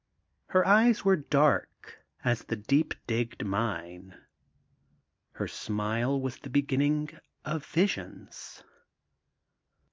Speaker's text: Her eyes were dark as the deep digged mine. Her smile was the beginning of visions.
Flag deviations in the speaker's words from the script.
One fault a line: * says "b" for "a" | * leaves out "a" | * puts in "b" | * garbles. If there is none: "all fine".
all fine